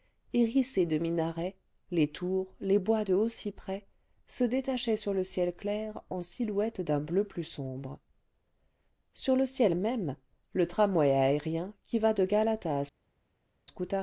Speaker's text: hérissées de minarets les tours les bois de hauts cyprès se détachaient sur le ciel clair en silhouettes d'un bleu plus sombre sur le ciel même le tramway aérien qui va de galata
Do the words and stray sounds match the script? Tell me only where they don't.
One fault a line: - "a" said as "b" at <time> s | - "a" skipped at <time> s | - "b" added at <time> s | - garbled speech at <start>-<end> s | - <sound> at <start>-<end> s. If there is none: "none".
none